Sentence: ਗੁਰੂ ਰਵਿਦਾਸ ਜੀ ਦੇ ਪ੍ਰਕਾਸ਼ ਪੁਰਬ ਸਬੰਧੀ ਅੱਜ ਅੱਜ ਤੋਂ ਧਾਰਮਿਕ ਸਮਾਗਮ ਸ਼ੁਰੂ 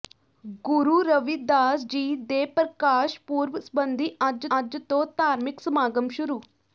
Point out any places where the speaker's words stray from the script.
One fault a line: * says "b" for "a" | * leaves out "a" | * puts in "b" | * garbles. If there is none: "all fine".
all fine